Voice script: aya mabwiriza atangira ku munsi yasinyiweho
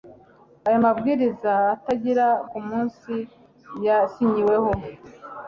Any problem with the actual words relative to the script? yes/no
no